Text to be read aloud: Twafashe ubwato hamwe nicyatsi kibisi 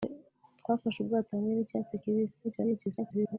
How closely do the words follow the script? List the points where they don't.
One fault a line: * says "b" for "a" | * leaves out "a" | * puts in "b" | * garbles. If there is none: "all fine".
* garbles